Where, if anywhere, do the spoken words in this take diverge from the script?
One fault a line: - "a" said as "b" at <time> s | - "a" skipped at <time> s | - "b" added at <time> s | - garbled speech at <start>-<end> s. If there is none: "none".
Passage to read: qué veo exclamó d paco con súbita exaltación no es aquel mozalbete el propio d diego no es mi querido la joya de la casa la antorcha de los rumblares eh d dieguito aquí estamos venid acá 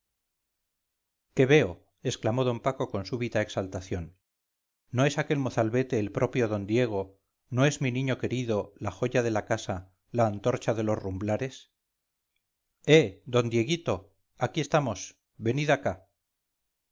- "niño" added at 8.0 s